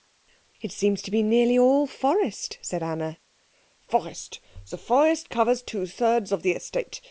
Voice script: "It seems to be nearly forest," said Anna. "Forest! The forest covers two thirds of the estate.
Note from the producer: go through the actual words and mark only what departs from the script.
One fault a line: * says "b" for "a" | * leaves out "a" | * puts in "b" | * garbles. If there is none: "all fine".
* puts in "all"